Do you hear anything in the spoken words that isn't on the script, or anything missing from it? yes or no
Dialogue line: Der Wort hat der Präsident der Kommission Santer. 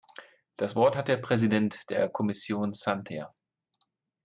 yes